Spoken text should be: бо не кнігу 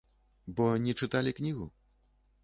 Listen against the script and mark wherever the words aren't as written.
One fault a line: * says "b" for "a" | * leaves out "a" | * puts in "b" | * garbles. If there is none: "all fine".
* puts in "чыталі"